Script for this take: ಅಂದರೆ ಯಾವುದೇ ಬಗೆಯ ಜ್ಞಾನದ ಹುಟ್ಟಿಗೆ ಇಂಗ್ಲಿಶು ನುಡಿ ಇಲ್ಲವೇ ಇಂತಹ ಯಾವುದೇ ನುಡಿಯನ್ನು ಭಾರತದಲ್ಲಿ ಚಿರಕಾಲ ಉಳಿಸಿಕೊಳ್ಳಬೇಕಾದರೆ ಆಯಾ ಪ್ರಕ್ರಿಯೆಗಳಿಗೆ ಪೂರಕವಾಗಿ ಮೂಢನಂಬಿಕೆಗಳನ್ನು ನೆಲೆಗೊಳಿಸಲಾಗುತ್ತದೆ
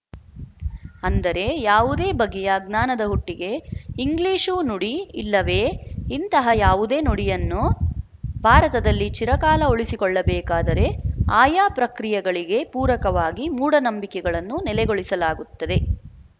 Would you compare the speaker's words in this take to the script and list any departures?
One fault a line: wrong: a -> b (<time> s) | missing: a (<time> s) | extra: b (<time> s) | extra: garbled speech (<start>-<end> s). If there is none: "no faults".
no faults